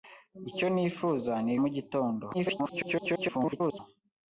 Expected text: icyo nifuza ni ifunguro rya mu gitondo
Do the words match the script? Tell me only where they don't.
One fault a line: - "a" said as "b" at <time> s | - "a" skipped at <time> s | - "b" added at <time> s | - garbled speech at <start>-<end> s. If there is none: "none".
- "ifunguro rya" skipped at 1.5 s
- garbled speech at 2.3-3.8 s